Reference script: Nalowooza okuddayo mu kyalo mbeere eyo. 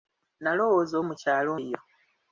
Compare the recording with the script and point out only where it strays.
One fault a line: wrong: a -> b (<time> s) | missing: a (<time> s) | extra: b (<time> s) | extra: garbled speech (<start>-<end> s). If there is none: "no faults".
missing: okuddayo (0.9 s)
missing: mbeere (1.5 s)